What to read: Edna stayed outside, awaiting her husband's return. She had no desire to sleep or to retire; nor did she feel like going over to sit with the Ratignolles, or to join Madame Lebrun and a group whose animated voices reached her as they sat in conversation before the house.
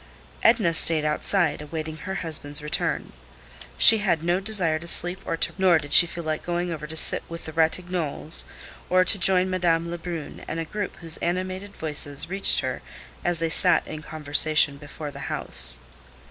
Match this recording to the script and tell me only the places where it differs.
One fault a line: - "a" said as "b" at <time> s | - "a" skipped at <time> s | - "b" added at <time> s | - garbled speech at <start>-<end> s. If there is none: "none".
- "retire" skipped at 5.5 s